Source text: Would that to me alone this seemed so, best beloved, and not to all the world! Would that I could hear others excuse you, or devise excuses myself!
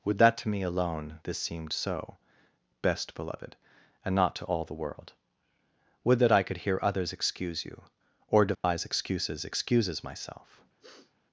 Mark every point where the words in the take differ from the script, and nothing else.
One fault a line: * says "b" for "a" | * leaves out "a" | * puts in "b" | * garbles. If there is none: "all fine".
* puts in "excuses"